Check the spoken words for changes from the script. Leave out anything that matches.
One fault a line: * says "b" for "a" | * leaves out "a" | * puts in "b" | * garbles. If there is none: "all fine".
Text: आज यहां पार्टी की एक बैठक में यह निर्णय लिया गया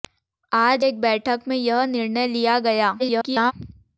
* leaves out "यहां पार्टी की"
* garbles